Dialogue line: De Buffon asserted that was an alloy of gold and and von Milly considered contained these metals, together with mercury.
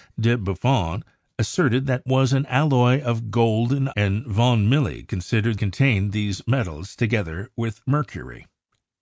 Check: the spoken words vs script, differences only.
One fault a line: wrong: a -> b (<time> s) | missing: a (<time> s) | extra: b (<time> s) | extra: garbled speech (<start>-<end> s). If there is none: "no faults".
no faults